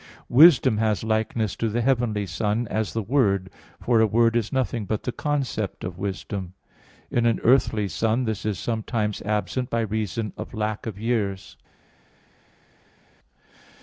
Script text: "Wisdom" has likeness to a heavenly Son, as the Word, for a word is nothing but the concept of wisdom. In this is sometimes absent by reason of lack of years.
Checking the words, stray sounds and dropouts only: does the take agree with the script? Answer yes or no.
no